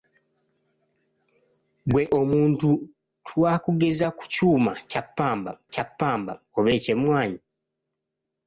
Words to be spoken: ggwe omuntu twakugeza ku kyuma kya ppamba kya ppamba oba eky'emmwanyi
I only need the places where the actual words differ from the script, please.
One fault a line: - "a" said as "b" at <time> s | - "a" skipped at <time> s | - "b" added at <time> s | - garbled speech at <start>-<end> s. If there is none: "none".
none